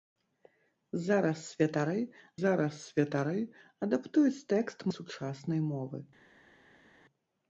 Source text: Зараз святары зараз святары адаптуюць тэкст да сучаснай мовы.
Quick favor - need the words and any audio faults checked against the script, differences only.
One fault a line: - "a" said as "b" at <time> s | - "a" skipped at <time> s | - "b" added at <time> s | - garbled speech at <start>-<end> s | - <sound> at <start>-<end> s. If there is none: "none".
none